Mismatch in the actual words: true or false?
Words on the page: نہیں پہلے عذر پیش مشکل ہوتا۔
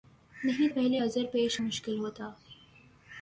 false